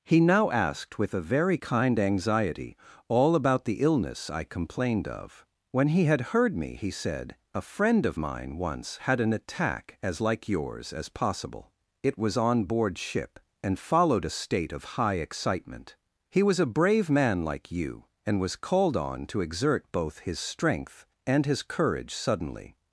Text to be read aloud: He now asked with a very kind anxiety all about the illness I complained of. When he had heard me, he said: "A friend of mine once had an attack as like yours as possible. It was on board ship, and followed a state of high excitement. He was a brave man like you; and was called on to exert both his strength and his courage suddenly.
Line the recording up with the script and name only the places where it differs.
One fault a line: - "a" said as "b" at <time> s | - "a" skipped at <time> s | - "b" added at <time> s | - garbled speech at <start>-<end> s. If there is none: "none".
none